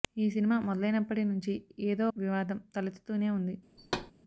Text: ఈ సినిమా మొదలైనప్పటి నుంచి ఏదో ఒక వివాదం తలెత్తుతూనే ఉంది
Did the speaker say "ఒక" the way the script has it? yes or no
no